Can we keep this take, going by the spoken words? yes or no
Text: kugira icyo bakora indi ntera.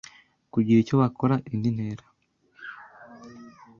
yes